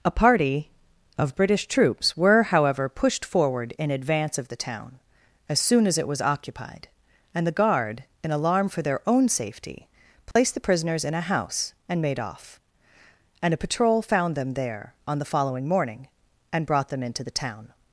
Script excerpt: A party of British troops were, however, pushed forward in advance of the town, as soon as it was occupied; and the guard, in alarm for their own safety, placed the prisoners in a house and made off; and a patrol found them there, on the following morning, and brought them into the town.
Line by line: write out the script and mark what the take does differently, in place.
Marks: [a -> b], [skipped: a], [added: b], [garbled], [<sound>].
A party of British troops were, however, pushed forward in advance of the town, as soon as it was occupied; and the guard, in alarm for their own safety, placed [dropout] the prisoners in a house and made off; and a patrol found them there, on the following morning, and brought them into the town.